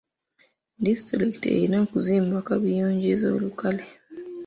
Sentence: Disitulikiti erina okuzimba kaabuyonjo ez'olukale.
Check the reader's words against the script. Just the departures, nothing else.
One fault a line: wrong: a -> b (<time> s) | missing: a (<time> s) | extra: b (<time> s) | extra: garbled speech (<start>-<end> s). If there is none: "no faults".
no faults